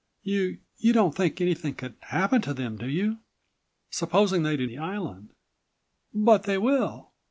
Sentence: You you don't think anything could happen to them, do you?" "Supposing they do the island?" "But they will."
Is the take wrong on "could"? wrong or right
right